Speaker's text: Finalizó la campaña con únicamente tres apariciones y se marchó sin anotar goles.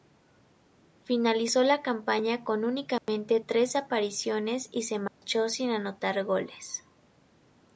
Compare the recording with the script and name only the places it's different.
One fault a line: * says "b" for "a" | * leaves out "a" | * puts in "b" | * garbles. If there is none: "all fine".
all fine